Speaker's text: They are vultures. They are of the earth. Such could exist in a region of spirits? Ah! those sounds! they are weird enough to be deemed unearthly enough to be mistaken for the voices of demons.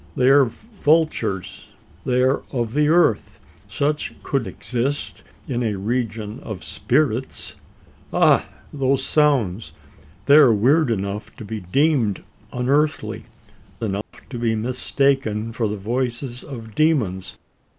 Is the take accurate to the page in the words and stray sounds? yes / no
no